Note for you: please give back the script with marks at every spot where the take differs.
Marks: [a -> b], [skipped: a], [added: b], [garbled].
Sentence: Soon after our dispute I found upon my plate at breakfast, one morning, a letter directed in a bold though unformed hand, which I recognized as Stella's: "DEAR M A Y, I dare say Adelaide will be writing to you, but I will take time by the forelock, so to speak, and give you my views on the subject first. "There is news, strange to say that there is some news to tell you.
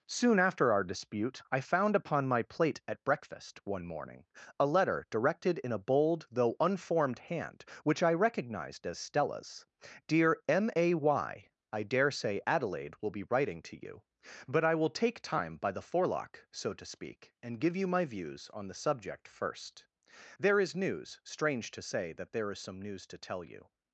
Soon after our dispute I found upon my plate at breakfast, one morning, a letter directed in a bold though unformed hand, which I recognized as Stella's: "DEAR M A Y, I dare say Adelaide will be writing to you, but I will take time by the forelock, so to speak, and give you my views on the subject first. "There is news, strange to say that there is some news to tell you.